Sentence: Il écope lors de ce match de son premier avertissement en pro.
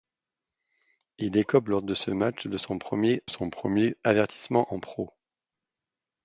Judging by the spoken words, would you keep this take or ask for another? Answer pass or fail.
fail